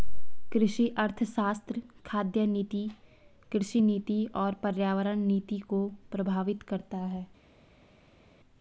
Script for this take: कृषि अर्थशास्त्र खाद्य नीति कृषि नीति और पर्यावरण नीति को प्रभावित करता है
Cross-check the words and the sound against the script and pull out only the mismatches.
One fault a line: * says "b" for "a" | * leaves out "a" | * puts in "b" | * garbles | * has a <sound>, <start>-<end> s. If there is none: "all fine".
all fine